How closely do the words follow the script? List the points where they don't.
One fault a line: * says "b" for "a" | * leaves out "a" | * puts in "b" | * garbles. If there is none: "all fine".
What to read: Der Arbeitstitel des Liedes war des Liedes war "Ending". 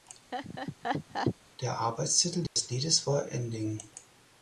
* leaves out "des Liedes war"